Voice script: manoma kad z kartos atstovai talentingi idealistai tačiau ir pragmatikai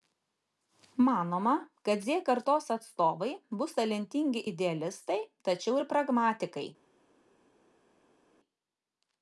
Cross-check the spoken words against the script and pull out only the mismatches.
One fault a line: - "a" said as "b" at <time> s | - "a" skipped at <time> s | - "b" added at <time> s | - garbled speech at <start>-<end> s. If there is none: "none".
- "bus" added at 3.6 s